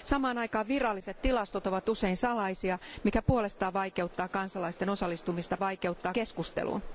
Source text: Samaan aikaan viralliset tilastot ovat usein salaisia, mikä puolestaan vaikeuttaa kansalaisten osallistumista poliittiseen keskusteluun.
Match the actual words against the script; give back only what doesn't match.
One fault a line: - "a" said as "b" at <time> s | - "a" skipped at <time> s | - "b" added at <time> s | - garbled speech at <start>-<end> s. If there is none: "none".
- "poliittiseen" said as "vaikeuttaa" at 5.6 s